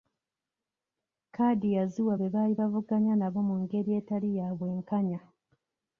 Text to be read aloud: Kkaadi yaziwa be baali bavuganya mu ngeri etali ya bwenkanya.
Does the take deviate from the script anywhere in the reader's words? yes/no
yes